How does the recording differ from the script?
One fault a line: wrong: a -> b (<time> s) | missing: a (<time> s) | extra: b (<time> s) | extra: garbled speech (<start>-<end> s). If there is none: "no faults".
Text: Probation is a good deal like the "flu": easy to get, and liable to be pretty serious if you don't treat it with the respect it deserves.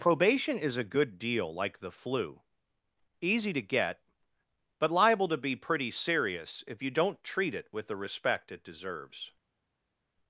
wrong: and -> but (4.8 s)